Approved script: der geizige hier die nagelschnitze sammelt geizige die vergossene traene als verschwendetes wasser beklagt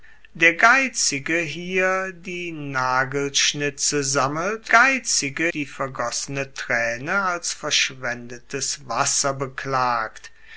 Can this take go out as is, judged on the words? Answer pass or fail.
pass